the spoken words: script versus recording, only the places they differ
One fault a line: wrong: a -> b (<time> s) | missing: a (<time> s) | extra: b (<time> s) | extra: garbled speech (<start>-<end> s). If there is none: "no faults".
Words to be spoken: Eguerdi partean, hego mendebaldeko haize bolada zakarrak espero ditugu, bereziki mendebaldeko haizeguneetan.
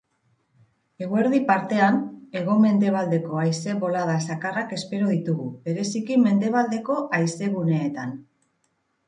no faults